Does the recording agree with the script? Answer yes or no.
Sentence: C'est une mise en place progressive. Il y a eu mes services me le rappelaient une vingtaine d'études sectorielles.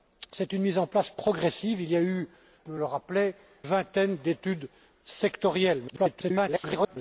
no